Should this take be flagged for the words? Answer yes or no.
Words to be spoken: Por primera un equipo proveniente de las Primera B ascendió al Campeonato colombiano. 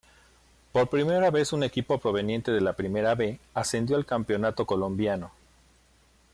yes